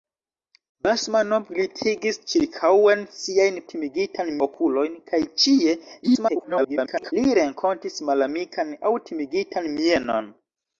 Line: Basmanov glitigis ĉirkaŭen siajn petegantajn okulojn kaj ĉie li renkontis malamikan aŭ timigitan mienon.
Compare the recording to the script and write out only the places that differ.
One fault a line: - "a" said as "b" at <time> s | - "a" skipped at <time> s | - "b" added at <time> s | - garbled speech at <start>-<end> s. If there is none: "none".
- "petegantajn" said as "timigitan" at 3.7 s
- garbled speech at 6.0-7.1 s